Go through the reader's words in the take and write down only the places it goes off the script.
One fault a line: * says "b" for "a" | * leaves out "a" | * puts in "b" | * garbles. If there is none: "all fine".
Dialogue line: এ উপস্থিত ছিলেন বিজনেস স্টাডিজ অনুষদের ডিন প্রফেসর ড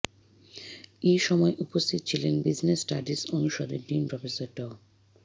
* puts in "সময়"